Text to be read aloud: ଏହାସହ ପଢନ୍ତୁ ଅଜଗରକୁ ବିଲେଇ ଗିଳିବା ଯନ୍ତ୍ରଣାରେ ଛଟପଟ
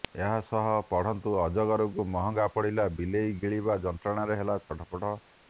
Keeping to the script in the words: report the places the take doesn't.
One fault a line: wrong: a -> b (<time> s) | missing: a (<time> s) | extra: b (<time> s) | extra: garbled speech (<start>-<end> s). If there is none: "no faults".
extra: ମହଙ୍ଗା ପଡିଲା (2.1 s)
extra: ହେଲା (4.4 s)